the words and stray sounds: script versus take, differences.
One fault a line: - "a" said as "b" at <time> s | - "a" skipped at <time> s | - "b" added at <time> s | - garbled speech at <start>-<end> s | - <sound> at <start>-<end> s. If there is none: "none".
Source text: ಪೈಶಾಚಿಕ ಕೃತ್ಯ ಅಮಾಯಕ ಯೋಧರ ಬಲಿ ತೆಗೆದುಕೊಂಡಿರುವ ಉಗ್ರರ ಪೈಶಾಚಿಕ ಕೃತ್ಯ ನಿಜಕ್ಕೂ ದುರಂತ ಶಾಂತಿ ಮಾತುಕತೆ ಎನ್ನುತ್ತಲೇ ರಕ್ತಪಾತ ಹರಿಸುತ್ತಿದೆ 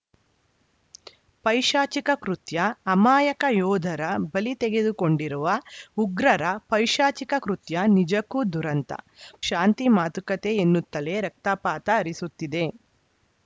none